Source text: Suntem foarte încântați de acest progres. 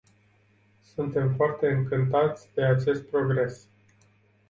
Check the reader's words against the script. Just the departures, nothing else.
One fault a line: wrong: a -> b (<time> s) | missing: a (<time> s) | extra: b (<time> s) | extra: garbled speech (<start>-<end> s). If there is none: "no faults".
no faults